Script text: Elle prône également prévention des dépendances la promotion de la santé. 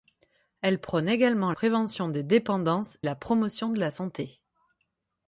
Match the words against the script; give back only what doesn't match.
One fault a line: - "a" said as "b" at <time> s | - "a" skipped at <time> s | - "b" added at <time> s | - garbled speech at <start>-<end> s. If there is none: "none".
none